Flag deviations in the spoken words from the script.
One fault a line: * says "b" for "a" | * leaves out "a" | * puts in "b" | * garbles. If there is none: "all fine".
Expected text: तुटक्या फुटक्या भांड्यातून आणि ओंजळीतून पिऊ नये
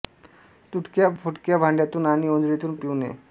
all fine